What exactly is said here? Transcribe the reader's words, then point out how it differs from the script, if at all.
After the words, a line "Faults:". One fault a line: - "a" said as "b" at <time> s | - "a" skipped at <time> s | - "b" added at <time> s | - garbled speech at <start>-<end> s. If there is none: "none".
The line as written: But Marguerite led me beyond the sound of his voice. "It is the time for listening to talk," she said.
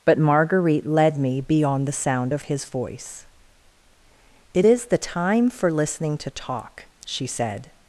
But Marguerite led me beyond the sound of his voice. "It is the time for listening to talk," she said.
Faults:
none